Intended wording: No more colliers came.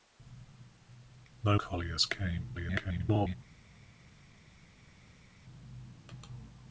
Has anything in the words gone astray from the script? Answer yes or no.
yes